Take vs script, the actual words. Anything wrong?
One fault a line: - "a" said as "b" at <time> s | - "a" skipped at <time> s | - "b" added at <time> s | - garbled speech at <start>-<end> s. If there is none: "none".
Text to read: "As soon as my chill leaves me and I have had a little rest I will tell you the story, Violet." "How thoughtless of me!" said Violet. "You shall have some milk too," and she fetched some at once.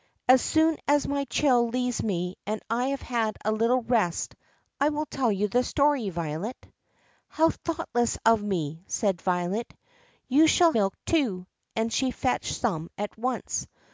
- "have some" skipped at 10.7 s